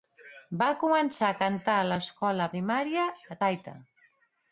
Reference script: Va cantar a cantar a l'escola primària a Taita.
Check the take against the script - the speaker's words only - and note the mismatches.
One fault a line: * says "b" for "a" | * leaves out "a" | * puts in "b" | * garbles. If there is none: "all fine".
* says "començar" for "cantar"